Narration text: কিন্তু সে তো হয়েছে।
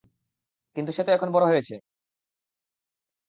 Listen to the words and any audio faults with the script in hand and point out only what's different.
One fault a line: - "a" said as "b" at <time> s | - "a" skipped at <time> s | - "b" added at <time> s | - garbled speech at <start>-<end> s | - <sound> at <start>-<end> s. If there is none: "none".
- "এখন বড়" added at 1.1 s